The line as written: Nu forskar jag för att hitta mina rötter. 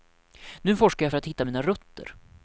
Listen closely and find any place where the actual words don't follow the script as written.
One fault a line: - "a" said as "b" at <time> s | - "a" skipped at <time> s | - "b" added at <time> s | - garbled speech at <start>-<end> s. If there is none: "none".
none